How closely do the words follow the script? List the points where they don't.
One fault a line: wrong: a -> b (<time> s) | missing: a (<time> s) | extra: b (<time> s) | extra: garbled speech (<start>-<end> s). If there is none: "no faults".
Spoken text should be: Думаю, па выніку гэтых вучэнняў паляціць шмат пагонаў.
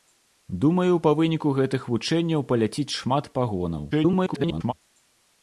extra: garbled speech (3.9-4.7 s)